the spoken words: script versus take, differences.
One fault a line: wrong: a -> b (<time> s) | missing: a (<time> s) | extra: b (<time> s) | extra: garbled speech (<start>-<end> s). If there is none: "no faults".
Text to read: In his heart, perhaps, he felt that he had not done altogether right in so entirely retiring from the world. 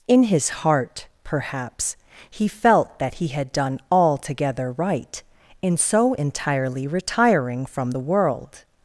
missing: not (3.5 s)